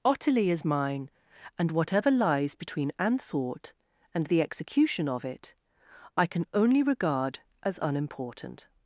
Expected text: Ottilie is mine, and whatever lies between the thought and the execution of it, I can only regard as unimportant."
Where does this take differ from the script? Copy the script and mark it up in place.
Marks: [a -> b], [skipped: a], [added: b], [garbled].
Ottilie is mine, and whatever lies between [the -> an] thought and the execution of it, I can only regard as unimportant."